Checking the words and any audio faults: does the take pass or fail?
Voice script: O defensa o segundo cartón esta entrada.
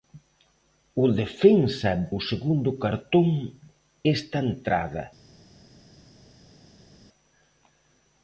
pass